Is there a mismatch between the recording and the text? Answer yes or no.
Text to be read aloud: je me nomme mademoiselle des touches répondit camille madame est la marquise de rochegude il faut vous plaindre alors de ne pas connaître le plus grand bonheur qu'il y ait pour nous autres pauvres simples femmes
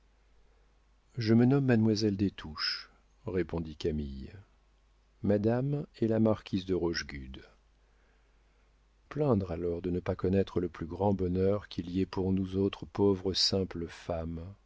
yes